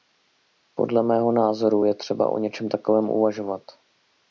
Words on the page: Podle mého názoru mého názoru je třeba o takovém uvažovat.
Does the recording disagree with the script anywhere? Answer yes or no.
yes